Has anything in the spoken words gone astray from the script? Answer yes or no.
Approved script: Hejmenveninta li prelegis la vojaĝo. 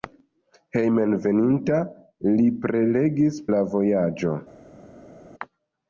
no